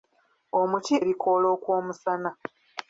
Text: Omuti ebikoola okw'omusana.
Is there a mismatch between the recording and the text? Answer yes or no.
no